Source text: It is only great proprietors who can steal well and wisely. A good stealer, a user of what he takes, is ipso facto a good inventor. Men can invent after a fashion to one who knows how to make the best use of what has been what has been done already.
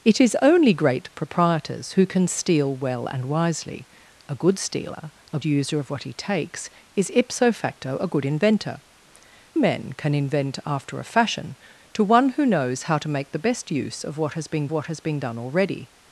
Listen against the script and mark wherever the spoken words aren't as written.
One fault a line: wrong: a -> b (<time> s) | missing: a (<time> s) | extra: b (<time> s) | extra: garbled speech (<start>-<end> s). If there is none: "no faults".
no faults